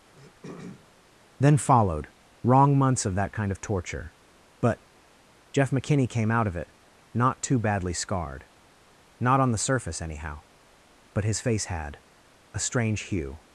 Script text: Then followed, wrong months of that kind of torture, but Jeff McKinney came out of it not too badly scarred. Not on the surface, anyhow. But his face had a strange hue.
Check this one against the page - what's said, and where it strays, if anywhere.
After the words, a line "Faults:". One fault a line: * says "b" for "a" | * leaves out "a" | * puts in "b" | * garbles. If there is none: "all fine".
Then followed, wrong months of that kind of torture, but Jeff McKinney came out of it not too badly scarred. Not on the surface, anyhow. But his face had a strange hue.
Faults:
all fine